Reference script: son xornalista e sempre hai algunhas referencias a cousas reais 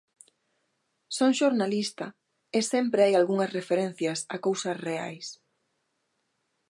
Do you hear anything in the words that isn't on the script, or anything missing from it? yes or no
no